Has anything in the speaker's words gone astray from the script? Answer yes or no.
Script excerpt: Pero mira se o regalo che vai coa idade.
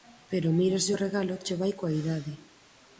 no